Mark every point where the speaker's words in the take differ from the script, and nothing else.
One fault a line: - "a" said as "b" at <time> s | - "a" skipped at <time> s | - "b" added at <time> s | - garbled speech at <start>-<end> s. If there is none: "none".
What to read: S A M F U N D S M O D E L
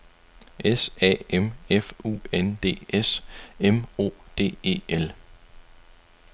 none